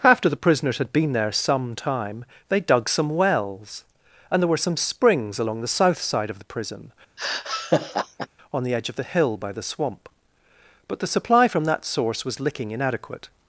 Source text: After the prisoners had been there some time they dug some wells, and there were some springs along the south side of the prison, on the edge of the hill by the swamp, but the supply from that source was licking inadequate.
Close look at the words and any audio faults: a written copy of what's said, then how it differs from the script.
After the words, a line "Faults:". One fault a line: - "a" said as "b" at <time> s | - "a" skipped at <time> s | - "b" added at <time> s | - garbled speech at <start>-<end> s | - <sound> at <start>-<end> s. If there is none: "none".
After the prisoners had been there some time they dug some wells, and there were some springs along the south side of the prison, on the edge of the hill by the swamp, but the supply from that source was licking inadequate.
Faults:
- laugh at 7.2-8.3 s